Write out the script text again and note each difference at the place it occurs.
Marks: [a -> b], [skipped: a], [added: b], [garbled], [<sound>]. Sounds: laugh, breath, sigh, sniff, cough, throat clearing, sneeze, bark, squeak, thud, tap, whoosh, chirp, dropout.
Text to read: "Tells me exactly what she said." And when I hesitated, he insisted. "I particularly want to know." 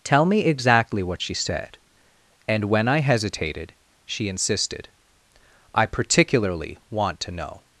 ["Tells -> Tell] me exactly what she said." And when I hesitated, [he -> she] insisted. "I particularly want to know."